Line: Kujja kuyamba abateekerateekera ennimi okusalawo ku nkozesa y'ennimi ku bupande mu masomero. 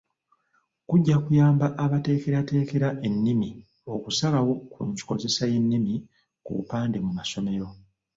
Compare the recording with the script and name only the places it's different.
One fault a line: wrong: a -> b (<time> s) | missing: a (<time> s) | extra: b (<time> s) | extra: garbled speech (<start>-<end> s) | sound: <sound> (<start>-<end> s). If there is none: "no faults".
no faults